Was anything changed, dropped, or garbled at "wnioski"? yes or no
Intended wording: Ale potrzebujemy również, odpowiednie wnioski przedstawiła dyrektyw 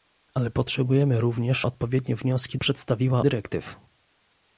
no